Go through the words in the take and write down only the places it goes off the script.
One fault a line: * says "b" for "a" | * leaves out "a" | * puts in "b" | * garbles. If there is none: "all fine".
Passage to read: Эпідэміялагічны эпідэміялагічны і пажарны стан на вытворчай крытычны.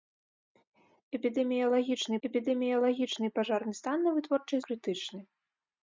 all fine